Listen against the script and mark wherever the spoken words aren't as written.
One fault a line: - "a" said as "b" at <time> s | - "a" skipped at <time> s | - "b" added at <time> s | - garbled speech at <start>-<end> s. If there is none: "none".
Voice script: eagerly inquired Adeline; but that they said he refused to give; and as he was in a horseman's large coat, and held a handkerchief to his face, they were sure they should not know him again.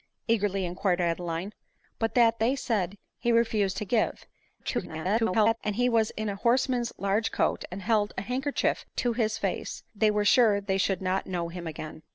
- garbled speech at 4.6-5.6 s